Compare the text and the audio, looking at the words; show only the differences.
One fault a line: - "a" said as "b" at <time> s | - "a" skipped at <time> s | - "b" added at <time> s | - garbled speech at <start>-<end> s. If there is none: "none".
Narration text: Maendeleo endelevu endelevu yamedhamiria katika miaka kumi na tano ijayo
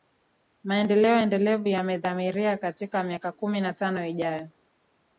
- "endelevu" skipped at 1.7 s